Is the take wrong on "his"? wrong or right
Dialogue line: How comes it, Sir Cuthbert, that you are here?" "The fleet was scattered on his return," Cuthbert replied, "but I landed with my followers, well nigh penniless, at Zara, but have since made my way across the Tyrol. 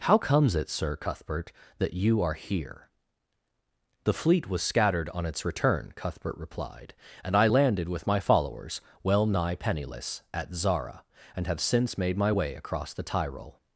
wrong